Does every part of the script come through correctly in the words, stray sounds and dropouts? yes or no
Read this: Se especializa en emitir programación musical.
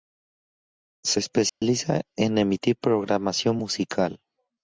no